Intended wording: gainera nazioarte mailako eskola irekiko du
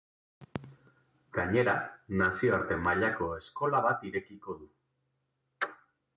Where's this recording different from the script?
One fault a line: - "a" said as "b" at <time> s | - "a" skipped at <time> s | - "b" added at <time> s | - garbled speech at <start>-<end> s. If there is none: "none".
- "bat" added at 3.9 s